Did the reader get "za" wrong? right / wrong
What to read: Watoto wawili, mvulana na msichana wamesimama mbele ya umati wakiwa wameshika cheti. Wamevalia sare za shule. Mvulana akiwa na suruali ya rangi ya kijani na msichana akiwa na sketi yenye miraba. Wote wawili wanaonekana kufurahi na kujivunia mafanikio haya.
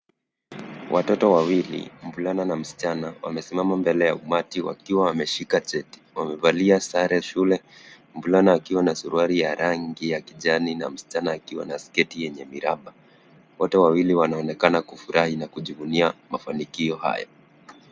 wrong